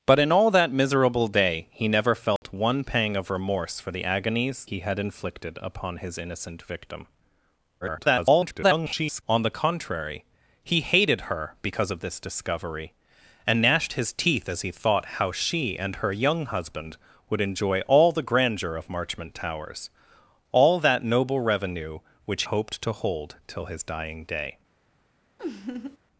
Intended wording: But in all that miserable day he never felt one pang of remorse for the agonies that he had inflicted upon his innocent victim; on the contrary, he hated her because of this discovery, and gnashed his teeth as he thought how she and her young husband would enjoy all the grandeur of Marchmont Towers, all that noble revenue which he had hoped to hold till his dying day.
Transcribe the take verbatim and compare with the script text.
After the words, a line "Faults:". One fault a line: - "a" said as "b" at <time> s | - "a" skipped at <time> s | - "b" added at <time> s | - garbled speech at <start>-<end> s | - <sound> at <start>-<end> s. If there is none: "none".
But in all that miserable day he never felt one pang of remorse for the agonies he had inflicted upon his innocent victim; [garbled] on the contrary, he hated her because of this discovery, and gnashed his teeth as he thought how she and her young husband would enjoy all the grandeur of Marchmont Towers, all that noble revenue which hoped to hold till his dying day.
Faults:
- dropout at 2.4-2.4 s
- "that" skipped at 4.7 s
- garbled speech at 7.8-9.2 s
- "he had" skipped at 22.4 s
- laugh at 25.4-26.0 s